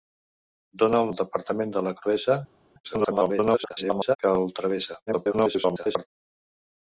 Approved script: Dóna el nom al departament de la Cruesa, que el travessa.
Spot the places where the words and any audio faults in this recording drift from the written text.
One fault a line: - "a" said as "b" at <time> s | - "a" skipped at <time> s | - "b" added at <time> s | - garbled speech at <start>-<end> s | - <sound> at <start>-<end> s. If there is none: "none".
- "nom" skipped at 1.1 s
- garbled speech at 2.8-4.2 s
- garbled speech at 5.1-6.1 s